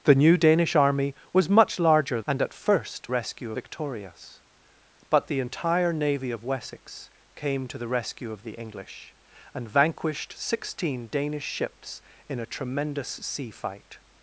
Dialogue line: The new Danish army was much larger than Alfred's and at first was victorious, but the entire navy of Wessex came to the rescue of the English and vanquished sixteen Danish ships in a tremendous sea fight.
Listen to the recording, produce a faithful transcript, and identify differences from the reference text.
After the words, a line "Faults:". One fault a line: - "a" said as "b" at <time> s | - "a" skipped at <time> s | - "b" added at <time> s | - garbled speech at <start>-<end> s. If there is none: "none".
The new Danish army was much larger and at first rescue victorious, but the entire navy of Wessex came to the rescue of the English and vanquished sixteen Danish ships in a tremendous sea fight.
Faults:
- "than Alfred's" skipped at 2.2 s
- "was" said as "rescue" at 3.1 s